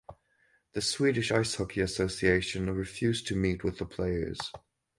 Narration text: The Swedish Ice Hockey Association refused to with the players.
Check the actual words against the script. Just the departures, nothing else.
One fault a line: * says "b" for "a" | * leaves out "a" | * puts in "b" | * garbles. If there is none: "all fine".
* puts in "meet"